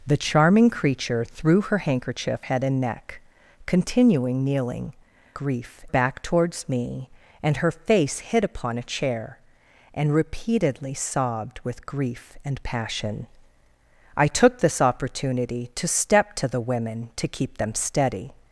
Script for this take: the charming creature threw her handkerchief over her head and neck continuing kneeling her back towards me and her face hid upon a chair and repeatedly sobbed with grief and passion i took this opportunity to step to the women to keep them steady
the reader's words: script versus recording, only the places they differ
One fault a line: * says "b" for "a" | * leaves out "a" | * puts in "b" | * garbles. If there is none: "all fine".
* leaves out "over her"
* says "grief" for "her"